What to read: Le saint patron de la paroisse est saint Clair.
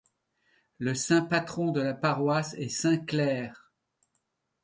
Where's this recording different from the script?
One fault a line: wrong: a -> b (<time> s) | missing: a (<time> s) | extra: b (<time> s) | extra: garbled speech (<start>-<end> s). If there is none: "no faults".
no faults